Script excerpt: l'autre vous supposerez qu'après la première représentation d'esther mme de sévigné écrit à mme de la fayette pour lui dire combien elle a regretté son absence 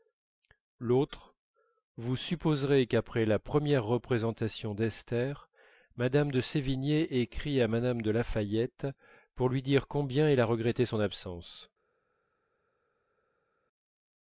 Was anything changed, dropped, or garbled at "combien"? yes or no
no